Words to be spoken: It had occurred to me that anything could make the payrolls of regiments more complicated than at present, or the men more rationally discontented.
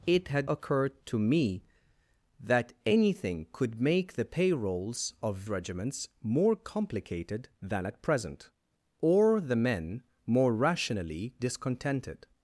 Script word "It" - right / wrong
right